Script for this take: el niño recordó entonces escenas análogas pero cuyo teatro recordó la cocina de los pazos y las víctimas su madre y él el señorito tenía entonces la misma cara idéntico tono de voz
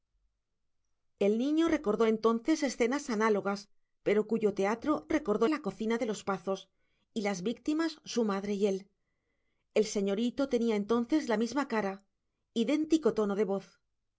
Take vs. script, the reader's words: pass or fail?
pass